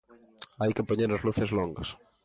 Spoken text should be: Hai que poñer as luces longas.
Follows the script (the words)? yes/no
yes